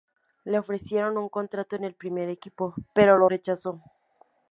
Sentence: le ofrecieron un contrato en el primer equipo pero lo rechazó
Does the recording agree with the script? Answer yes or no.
yes